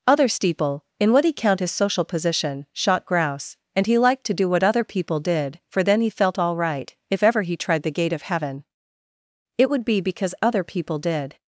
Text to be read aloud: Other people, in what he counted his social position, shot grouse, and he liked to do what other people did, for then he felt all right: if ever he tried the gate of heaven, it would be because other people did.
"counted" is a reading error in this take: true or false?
true